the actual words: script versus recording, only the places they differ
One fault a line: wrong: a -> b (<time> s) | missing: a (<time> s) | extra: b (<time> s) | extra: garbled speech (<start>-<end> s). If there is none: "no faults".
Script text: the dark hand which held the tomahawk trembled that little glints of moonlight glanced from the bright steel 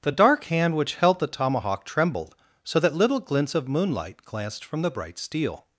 extra: so (2.6 s)